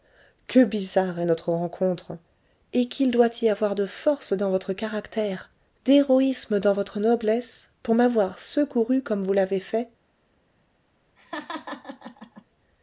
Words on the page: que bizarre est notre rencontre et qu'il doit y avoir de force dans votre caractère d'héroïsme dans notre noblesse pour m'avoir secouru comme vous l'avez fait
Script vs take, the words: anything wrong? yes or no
yes